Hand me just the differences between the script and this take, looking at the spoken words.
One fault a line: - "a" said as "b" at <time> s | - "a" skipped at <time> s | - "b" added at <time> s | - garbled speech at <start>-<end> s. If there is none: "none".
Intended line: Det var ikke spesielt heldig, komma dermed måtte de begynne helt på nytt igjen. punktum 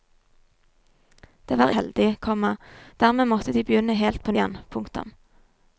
- "ikke spesielt" skipped at 1.7 s
- "nytt" skipped at 4.3 s